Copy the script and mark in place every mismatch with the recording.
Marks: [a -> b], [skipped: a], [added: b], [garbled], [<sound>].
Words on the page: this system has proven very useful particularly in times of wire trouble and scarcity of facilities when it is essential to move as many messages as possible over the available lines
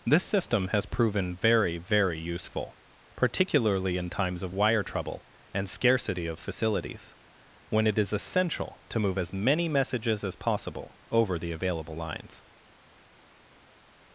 this system has proven very [added: very] useful particularly in times of wire trouble and scarcity of facilities when it is essential to move as many messages as possible over the available lines